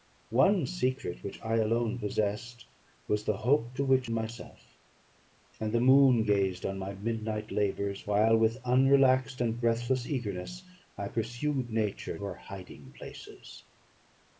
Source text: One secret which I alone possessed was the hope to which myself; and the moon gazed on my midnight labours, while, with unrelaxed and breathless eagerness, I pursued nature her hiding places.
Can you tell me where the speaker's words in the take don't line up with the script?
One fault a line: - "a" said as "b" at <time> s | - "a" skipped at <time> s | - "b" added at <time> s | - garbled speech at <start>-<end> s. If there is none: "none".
none